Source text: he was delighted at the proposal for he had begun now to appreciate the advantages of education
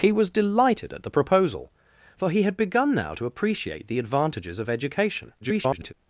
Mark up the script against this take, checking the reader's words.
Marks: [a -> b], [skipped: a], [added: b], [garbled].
he was delighted at the proposal for he had begun now to appreciate the advantages of education [garbled]